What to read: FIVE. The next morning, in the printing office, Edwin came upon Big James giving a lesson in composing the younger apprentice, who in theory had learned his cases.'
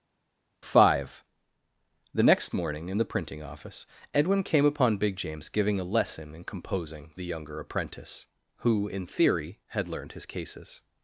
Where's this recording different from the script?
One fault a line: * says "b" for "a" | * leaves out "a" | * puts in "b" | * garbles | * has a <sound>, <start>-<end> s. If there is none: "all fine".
all fine